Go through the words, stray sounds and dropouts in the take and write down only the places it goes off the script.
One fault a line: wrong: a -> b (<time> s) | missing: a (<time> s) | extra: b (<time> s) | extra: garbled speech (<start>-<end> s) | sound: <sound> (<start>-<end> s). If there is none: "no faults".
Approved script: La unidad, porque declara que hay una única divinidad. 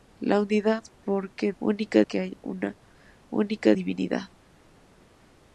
wrong: declara -> única (1.6 s)